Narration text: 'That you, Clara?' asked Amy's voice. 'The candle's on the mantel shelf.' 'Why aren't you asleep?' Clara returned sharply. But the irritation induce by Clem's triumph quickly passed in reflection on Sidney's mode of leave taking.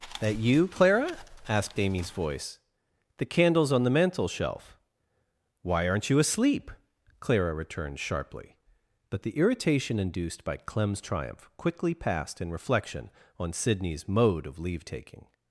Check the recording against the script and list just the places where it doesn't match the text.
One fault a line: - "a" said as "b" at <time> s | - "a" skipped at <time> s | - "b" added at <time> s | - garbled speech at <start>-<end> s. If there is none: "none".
- "induce" said as "induced" at 10.0 s